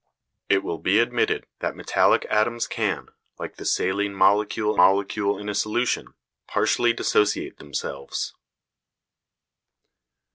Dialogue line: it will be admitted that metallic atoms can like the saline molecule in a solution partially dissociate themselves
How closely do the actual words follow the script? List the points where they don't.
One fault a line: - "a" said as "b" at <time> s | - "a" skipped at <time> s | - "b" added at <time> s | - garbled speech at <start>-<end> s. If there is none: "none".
- "molecule" added at 4.7 s